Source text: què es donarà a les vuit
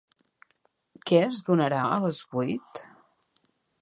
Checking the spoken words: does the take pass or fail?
pass